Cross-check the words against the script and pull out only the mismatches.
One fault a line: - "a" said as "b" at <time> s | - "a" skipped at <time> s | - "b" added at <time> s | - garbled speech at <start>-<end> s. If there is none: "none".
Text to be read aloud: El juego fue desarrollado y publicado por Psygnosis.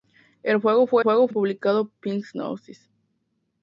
- "desarrollado" said as "juego" at 1.0 s
- "por" skipped at 1.9 s